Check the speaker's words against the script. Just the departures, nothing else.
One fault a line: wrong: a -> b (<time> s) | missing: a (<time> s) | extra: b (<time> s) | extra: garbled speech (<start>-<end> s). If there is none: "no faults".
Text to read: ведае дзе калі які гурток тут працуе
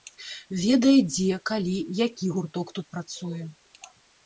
no faults